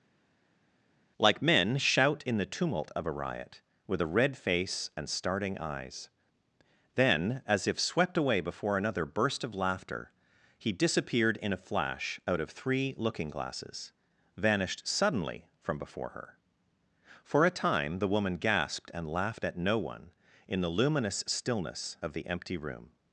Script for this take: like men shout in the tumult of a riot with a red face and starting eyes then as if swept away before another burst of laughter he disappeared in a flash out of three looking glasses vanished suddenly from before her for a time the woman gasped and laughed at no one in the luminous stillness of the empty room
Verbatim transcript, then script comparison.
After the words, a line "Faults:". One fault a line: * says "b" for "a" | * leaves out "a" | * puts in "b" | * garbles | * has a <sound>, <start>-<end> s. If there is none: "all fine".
like men shout in the tumult of a riot with a red face and starting eyes then as if swept away before another burst of laughter he disappeared in a flash out of three looking glasses vanished suddenly from before her for a time the woman gasped and laughed at no one in the luminous stillness of the empty room
Faults:
all fine